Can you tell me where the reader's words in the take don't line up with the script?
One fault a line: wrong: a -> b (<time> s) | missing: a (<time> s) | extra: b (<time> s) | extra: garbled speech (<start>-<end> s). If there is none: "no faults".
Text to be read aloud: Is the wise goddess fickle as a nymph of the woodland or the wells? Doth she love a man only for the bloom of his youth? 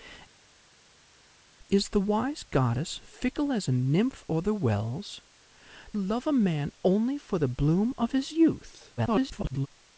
missing: of the woodland (4.2 s)
missing: Doth she (5.2 s)
extra: garbled speech (9.0-9.7 s)